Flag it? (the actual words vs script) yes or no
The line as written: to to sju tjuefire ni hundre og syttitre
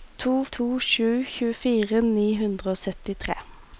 no